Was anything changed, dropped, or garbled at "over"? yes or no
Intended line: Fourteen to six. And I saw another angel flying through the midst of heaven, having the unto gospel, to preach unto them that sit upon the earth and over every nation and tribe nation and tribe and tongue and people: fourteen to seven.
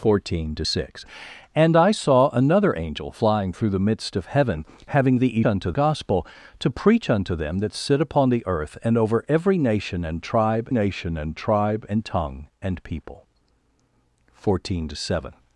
no